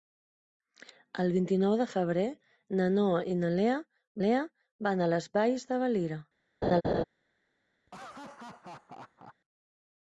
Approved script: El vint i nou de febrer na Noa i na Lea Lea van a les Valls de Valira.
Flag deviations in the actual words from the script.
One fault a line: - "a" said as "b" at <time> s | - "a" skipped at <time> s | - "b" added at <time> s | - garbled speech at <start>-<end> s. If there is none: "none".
none